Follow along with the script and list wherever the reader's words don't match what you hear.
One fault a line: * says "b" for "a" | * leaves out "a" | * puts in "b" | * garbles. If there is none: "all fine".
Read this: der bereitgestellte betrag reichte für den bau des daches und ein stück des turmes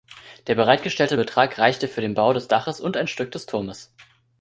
all fine